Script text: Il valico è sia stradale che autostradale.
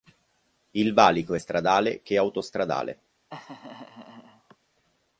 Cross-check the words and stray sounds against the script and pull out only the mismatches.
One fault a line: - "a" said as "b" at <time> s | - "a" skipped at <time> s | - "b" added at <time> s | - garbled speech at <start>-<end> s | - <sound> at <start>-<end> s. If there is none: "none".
- "sia" skipped at 1.4 s
- laugh at 3.3-4.6 s